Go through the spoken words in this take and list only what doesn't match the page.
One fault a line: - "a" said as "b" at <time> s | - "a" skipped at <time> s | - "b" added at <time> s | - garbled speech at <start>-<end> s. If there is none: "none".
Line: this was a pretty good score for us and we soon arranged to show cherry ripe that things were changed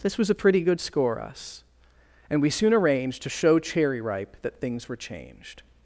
- "for" skipped at 1.2 s